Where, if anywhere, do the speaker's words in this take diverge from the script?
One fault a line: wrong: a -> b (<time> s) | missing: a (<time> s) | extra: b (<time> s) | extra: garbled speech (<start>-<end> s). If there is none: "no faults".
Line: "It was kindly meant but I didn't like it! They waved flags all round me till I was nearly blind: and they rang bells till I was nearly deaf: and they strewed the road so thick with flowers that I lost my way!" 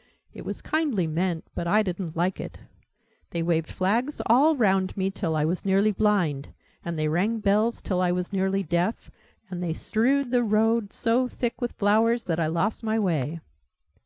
no faults